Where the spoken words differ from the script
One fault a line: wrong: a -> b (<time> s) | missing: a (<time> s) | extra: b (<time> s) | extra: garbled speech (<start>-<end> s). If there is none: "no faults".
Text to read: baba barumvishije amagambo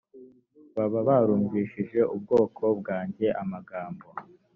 extra: ubwoko bwanjye (2.1 s)